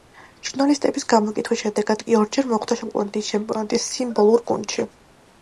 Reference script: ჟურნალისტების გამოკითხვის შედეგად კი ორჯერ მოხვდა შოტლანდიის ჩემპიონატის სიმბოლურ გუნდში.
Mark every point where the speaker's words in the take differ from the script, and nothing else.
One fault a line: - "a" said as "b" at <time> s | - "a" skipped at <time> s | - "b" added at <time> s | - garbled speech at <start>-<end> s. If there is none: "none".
none